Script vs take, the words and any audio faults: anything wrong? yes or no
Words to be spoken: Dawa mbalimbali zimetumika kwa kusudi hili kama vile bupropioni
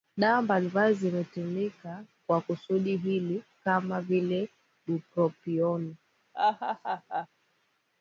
yes